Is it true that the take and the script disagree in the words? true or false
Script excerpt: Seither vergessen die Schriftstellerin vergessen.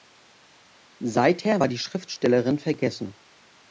true